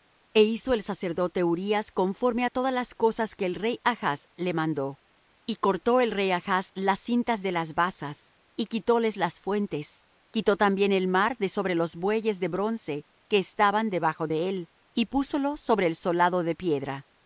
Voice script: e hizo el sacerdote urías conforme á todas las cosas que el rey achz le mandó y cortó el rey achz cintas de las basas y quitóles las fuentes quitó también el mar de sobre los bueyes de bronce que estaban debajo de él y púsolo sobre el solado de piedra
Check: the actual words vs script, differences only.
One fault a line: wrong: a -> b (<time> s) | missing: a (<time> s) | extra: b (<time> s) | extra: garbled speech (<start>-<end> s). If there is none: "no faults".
extra: las (6.7 s)